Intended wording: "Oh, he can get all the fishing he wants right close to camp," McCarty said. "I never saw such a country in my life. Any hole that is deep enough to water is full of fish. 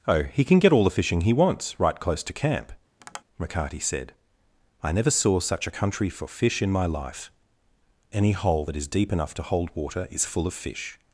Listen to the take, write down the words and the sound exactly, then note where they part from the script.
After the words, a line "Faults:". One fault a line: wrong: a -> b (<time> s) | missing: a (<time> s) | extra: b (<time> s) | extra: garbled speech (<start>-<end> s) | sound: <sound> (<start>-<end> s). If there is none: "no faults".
"Oh, he can get all the fishing he wants right close to camp," McCarty said. "I never saw such a country for fish in my life. Any hole that is deep enough to hold water is full of fish.
Faults:
sound: tap (3.0-3.2 s)
extra: for fish (6.1 s)
extra: hold (9.4 s)